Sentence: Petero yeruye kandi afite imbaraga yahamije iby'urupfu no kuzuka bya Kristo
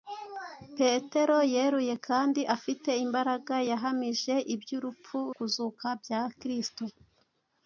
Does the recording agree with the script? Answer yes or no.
no